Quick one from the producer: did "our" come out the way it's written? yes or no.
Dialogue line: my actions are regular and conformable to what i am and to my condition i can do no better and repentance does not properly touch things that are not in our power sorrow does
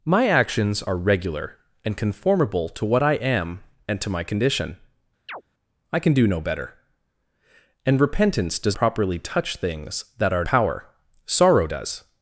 no